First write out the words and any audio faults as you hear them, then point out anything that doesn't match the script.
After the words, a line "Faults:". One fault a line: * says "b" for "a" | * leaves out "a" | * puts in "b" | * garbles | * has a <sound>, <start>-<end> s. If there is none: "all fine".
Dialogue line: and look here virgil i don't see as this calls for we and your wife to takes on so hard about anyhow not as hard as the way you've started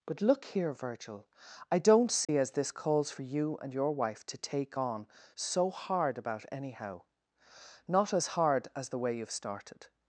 but look here virgil i don't see as this calls for you and your wife to take on so hard about anyhow not as hard as the way you've started
Faults:
* says "but" for "and"
* has a dropout, 2.2-2.3 s
* says "you" for "we"
* says "take" for "takes"